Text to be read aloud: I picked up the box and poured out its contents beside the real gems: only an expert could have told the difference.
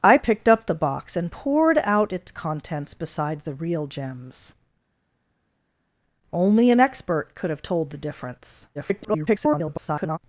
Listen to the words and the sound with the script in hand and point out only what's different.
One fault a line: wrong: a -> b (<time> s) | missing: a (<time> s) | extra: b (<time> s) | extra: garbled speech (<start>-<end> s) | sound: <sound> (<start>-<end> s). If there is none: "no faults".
extra: garbled speech (8.7-10.2 s)